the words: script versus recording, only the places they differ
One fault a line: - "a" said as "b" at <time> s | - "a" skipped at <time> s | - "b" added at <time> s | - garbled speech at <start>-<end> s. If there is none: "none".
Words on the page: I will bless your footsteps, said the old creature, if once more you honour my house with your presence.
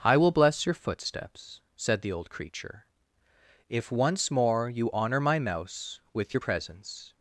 - "house" said as "mouse" at 5.4 s